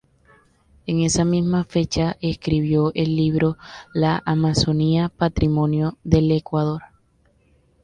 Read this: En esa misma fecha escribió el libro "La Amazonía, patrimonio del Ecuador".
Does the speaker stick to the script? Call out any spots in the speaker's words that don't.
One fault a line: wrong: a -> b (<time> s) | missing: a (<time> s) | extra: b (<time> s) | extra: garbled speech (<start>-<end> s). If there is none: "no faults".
no faults